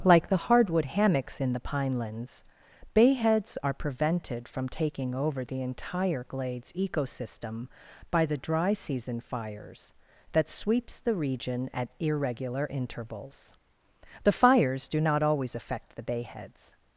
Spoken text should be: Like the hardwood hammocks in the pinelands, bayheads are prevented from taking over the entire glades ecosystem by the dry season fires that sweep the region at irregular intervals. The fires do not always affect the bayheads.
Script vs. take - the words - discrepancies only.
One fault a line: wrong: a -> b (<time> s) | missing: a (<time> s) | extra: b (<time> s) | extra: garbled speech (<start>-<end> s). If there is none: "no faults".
wrong: sweep -> sweeps (10.5 s)